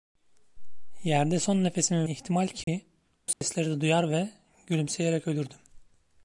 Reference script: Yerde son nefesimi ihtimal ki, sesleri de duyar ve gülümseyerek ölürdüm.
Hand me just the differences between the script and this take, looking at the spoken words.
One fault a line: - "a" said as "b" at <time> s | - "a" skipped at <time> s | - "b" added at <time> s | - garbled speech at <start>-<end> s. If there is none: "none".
none